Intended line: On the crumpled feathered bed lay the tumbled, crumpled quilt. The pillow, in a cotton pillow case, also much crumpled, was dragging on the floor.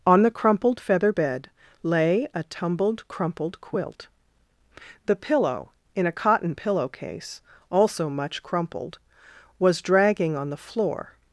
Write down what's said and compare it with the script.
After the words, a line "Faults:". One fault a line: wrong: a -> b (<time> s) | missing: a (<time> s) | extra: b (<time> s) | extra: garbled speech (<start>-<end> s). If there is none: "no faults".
On the crumpled feather bed lay a tumbled, crumpled quilt. The pillow, in a cotton pillow case, also much crumpled, was dragging on the floor.
Faults:
wrong: feathered -> feather (0.8 s)
wrong: the -> a (2.3 s)